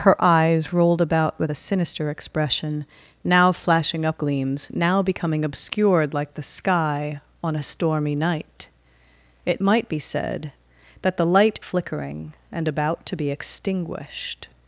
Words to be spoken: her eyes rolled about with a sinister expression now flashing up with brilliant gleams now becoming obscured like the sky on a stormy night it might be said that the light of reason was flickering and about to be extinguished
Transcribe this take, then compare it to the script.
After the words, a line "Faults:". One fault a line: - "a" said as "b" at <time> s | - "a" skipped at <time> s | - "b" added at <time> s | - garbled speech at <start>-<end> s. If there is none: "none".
her eyes rolled about with a sinister expression now flashing up gleams now becoming obscured like the sky on a stormy night it might be said that the light flickering and about to be extinguished
Faults:
- "with brilliant" skipped at 4.2 s
- "of reason was" skipped at 11.6 s